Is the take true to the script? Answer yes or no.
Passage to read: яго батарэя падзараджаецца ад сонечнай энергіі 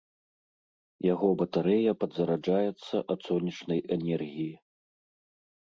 yes